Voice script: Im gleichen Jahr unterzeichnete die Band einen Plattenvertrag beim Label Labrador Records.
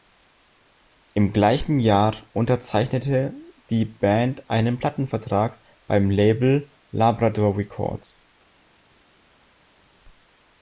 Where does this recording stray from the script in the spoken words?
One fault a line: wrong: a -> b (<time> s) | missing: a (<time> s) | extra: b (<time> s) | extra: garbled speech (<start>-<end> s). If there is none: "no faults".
no faults